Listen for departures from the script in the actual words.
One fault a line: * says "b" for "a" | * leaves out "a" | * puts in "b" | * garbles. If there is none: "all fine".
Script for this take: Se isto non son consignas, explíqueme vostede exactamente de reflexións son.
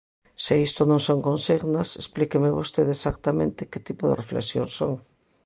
* puts in "que tipo"